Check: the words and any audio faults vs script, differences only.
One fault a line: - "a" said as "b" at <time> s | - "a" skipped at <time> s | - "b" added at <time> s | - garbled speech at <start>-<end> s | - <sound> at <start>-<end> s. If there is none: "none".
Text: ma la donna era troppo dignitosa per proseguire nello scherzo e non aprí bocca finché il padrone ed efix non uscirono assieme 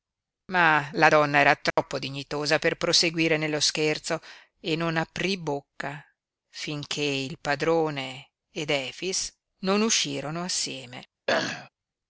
- dropout at 1.7-1.8 s
- throat clearing at 11.3-11.7 s